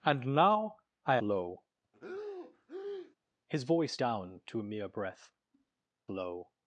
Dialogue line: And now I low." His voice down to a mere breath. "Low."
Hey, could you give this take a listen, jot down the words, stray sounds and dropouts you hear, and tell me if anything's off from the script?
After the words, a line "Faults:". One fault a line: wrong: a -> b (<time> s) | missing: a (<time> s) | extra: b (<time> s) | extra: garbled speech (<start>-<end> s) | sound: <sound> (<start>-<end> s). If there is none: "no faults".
And now I low." His voice down to a mere breath. "Low."
Faults:
sound: breath (1.9-3.2 s)